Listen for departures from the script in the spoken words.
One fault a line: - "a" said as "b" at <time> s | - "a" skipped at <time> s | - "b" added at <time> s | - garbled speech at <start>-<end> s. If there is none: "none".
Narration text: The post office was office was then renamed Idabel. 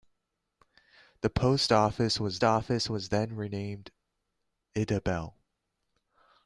none